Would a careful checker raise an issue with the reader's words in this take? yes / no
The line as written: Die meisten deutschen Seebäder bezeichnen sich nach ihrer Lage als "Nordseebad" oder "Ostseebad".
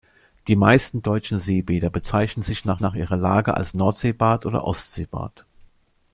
yes